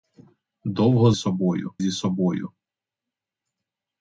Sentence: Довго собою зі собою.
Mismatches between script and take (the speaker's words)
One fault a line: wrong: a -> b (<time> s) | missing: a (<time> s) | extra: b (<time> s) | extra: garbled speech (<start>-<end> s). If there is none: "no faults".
no faults